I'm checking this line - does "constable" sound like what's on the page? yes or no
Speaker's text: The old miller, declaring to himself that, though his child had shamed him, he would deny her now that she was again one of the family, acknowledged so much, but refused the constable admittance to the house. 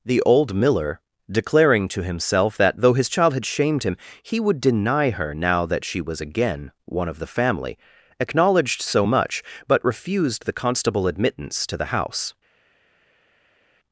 yes